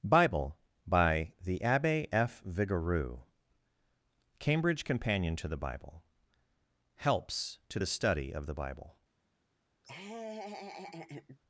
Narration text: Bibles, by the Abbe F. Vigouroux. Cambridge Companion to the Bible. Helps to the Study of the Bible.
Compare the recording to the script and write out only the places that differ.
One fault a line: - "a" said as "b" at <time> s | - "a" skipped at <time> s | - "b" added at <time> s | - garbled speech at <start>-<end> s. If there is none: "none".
- "Bibles" said as "Bible" at 0.0 s